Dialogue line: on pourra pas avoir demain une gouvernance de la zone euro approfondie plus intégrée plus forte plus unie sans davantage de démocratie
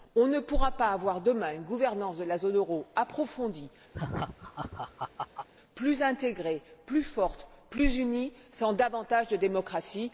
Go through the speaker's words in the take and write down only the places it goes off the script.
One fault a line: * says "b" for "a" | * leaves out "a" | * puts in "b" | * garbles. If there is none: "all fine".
* puts in "ne"